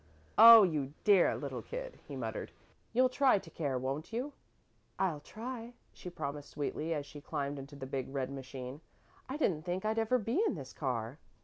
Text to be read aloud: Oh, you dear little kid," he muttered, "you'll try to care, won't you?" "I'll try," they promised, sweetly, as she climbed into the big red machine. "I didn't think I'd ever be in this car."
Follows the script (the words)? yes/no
no